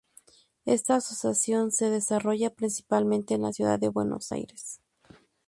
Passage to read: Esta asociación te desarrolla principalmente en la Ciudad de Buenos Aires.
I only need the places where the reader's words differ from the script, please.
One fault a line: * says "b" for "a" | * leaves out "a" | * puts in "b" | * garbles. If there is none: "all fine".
* says "se" for "te"